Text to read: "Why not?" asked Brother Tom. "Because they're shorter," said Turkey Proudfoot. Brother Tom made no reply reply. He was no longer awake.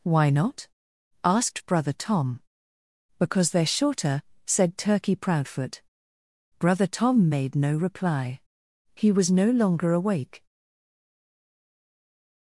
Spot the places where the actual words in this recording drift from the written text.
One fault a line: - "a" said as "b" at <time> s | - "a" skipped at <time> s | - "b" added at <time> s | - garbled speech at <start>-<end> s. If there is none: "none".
- "reply" skipped at 8.4 s